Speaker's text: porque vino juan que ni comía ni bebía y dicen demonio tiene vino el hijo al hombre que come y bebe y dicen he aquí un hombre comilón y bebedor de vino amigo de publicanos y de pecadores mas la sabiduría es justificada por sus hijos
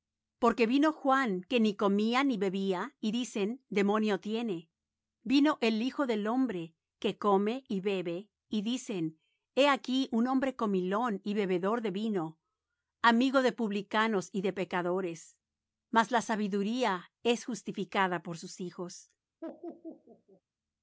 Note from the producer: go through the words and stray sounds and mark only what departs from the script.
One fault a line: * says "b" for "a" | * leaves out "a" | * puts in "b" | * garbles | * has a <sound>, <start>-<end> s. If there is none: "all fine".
* says "del" for "al"
* has a laugh, 19.4-20.4 s